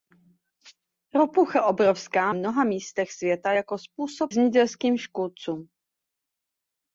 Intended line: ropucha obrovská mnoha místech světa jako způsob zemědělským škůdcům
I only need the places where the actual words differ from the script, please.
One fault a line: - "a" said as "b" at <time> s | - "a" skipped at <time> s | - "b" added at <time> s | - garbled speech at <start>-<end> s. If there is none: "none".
none